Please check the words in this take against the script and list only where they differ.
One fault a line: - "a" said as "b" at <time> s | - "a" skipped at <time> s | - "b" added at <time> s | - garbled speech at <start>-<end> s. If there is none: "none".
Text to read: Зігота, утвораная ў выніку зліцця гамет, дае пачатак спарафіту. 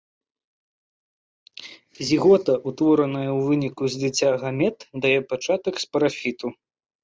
none